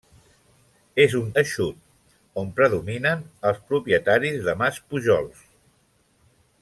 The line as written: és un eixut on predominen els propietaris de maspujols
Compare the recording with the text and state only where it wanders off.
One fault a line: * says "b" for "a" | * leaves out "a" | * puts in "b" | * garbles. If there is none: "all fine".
all fine